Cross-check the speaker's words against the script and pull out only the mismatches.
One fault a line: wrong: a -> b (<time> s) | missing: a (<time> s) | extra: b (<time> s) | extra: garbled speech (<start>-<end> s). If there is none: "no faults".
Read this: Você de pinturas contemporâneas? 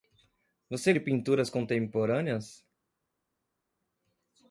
no faults